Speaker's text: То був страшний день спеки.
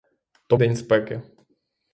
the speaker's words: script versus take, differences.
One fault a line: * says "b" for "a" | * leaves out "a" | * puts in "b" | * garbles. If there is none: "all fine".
* leaves out "був страшний"